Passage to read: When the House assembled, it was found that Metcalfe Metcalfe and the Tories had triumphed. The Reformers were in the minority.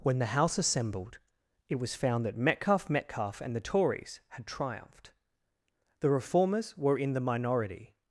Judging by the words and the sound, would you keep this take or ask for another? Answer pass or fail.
pass